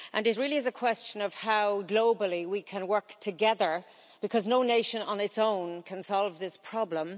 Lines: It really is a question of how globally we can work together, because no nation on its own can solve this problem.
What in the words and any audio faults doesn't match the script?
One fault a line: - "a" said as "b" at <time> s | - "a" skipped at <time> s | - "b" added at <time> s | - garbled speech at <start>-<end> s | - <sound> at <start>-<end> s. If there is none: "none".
none